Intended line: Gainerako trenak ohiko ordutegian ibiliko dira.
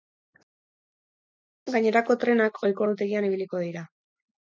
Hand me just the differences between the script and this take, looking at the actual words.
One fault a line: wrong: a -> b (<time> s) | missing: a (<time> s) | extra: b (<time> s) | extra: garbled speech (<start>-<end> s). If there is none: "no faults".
no faults